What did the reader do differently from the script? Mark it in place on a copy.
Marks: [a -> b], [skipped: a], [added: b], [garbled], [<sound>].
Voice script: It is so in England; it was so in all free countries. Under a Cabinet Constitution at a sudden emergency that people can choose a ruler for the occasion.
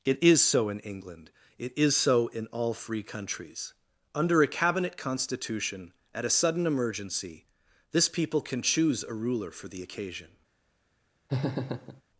It is so in England; it [was -> is] so in all free countries. Under a Cabinet Constitution at a sudden emergency [that -> this] people can choose a ruler for the occasion. [laugh]